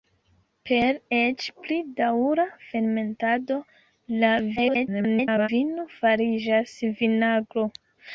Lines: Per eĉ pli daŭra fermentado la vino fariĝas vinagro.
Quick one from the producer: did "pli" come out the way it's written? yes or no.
yes